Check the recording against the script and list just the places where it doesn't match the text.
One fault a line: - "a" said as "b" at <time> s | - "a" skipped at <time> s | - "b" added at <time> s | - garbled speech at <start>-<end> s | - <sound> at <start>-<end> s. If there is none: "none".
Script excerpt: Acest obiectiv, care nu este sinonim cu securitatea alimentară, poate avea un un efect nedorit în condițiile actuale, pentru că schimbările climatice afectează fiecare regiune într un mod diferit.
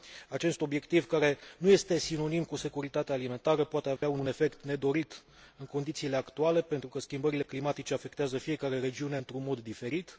- dropout at 4.0-4.0 s